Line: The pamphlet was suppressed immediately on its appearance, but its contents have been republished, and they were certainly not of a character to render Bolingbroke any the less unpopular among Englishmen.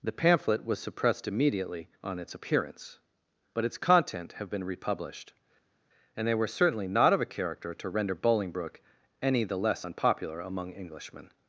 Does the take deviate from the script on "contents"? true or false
true